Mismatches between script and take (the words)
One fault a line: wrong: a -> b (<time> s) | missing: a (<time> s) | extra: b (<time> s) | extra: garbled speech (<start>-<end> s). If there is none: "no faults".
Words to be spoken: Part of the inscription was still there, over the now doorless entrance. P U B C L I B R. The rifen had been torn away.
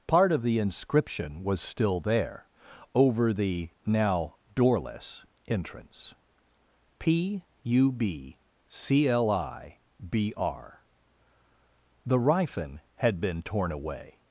no faults